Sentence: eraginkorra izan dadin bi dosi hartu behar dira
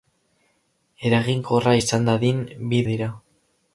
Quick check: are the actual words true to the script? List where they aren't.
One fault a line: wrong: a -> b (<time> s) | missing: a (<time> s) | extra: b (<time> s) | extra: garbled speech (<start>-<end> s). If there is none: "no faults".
missing: dosi hartu behar (2.8 s)